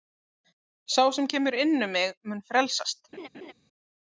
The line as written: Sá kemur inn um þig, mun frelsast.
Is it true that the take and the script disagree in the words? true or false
true